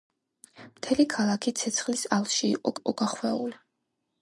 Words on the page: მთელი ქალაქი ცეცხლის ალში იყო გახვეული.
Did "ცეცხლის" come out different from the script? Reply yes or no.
no